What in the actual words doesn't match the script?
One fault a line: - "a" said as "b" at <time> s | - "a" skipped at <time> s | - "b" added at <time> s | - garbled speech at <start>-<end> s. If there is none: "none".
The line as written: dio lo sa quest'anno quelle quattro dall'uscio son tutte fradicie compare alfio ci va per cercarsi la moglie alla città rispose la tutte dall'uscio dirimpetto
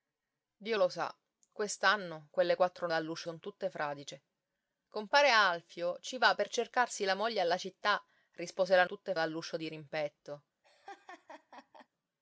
none